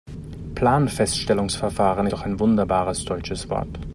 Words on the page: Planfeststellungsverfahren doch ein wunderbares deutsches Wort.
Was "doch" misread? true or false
false